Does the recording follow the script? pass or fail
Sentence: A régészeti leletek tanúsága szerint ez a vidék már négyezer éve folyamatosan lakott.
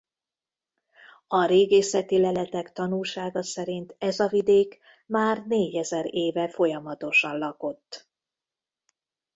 pass